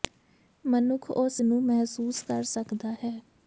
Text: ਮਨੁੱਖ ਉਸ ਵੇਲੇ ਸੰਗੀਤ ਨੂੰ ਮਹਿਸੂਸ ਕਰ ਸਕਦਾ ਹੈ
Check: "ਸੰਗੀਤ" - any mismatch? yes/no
yes